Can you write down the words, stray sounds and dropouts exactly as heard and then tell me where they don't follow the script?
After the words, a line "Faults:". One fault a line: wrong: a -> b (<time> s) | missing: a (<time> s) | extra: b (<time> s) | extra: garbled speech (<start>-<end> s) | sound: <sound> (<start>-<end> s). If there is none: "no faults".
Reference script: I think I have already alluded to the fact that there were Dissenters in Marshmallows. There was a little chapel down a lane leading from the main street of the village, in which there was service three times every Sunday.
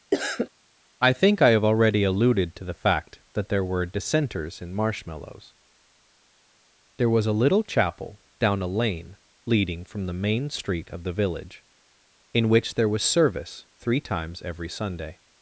I think I have already alluded to the fact that there were Dissenters in Marshmallows. There was a little chapel down a lane leading from the main street of the village, in which there was service three times every Sunday.
Faults:
sound: cough (0.1-0.5 s)